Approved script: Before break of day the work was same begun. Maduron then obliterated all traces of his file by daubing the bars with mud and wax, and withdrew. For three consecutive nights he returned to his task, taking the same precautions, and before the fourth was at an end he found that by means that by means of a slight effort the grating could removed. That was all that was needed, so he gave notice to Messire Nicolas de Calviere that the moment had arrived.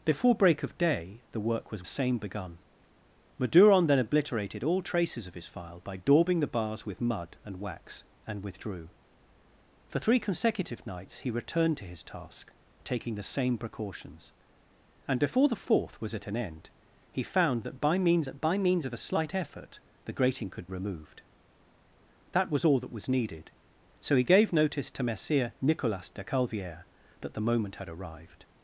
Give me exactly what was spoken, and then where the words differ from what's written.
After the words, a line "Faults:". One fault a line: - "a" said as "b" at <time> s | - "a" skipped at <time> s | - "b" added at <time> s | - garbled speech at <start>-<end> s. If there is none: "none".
Before break of day the work was same begun. Maduron then obliterated all traces of his file by daubing the bars with mud and wax, and withdrew. For three consecutive nights he returned to his task, taking the same precautions, and before the fourth was at an end he found that by means that by means of a slight effort the grating could removed. That was all that was needed, so he gave notice to Messire Nicolas de Calviere that the moment had arrived.
Faults:
none